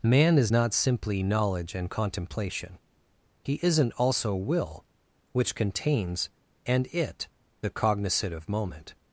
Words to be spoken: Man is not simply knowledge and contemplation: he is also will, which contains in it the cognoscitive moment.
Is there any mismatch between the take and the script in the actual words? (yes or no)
yes